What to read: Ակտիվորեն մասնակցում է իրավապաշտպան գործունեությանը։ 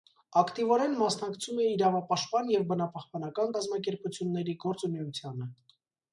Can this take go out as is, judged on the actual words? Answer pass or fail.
fail